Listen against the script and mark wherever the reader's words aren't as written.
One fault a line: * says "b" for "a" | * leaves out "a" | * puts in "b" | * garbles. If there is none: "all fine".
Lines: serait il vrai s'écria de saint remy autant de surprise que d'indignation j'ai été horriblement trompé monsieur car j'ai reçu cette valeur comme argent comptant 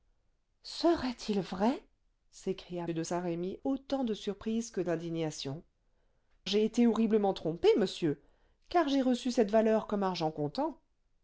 all fine